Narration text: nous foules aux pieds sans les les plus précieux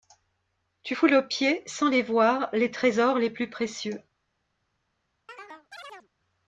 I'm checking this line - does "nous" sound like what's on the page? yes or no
no